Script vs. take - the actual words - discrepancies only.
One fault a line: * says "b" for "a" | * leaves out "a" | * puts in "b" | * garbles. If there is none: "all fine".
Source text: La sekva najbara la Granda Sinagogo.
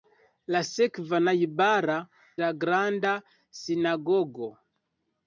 all fine